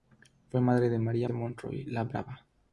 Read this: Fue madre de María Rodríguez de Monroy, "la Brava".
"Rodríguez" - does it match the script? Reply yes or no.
no